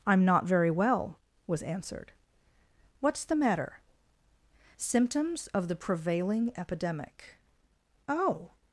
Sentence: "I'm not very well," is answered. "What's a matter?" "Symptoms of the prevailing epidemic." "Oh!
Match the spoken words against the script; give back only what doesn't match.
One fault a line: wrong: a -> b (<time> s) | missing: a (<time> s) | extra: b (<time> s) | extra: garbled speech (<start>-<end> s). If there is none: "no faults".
wrong: is -> was (1.4 s)
wrong: a -> the (3.2 s)